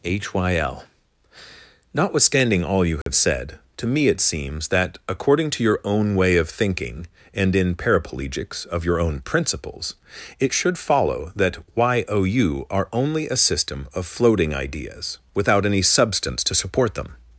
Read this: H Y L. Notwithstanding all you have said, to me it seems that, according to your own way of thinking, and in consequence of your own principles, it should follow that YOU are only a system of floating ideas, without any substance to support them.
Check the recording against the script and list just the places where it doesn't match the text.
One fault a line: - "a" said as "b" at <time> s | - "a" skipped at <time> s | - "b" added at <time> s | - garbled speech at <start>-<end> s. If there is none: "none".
- "consequence" said as "paraplegics" at 7.8 s